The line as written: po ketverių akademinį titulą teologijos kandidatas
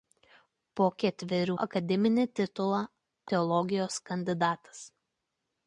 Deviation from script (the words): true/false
false